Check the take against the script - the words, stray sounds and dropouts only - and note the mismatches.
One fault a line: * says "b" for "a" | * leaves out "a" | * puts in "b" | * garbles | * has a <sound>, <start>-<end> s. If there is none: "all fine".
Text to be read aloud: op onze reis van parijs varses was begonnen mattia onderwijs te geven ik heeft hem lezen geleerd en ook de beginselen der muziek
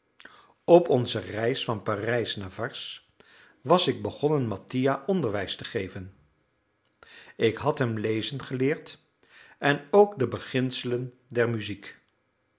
* puts in "naar"
* puts in "ik"
* says "had" for "heeft"